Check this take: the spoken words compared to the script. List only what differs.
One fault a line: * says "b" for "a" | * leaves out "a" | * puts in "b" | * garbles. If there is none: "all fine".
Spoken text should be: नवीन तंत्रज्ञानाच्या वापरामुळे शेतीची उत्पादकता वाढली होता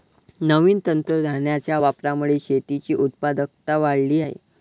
* says "आहे" for "होता"